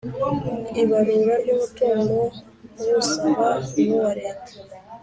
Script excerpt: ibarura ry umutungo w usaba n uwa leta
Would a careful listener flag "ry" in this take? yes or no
no